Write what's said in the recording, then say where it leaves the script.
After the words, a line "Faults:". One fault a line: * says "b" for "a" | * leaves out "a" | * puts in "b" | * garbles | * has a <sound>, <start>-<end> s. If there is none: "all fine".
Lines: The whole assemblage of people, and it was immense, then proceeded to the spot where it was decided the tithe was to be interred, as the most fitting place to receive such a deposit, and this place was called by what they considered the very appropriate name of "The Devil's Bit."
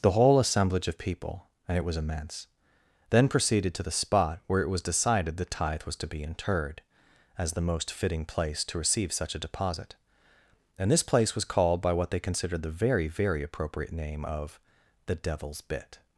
The whole assemblage of people, and it was immense, then proceeded to the spot where it was decided the tithe was to be interred, as the most fitting place to receive such a deposit, and this place was called by what they considered the very very appropriate name of "The Devil's Bit."
Faults:
* puts in "very"